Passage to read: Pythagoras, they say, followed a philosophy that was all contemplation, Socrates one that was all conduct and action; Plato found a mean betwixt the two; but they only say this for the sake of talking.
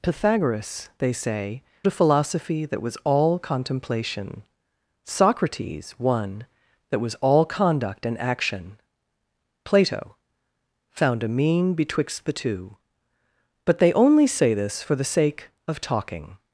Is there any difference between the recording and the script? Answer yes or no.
yes